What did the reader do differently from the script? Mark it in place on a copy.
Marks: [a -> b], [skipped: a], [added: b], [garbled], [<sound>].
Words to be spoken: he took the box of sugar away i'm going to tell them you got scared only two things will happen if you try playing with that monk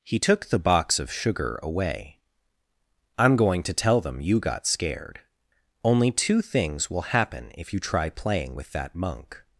he took the box of sugar away i'm going to tell them you got scared only two things will happen if you try playing with that monk